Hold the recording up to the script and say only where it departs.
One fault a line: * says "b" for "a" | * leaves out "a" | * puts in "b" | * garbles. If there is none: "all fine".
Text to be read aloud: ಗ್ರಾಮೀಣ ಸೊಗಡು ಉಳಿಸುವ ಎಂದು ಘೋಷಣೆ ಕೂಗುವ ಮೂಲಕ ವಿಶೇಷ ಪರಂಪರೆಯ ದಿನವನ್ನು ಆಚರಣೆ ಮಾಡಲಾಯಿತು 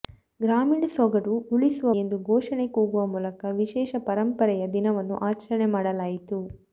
all fine